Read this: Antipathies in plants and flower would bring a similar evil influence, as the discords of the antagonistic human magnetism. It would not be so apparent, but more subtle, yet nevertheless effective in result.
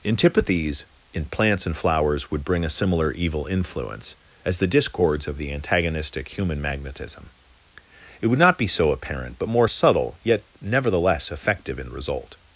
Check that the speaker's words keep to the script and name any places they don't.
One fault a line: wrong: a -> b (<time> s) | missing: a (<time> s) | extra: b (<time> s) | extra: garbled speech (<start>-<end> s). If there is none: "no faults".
wrong: flower -> flowers (1.8 s)